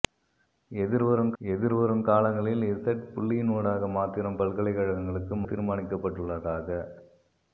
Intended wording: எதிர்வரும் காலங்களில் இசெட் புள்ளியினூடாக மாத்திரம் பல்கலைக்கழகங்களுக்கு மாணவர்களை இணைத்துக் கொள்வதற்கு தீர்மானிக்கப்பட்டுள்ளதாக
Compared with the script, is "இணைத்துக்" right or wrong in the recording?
wrong